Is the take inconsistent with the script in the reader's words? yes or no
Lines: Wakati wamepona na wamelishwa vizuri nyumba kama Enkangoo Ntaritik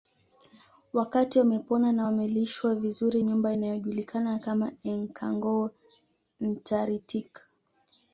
yes